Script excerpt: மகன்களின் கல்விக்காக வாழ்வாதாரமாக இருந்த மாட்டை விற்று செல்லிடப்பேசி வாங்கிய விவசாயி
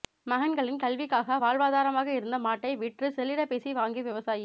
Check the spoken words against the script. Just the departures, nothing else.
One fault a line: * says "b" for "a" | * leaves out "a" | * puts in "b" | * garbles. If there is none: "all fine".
all fine